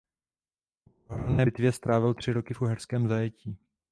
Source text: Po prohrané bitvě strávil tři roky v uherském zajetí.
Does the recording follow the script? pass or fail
pass